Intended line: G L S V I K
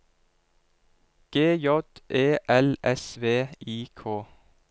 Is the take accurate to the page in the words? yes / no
no